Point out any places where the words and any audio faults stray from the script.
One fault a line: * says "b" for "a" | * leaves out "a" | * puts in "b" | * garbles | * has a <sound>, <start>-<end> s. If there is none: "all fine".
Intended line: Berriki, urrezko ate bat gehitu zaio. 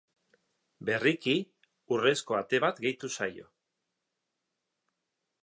all fine